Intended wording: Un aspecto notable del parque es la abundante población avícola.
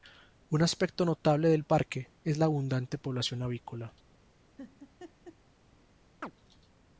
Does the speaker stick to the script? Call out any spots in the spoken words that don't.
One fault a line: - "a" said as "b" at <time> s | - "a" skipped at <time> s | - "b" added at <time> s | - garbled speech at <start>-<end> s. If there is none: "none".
none